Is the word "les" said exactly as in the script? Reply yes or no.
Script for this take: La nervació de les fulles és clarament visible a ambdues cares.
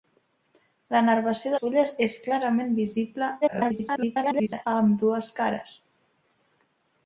no